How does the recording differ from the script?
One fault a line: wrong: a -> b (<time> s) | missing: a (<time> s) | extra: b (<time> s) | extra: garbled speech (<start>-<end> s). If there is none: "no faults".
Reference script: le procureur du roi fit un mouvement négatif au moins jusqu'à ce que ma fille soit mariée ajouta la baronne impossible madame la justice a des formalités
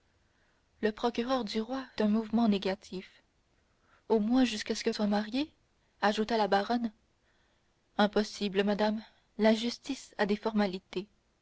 missing: fit (1.9 s)
missing: ma fille (4.9 s)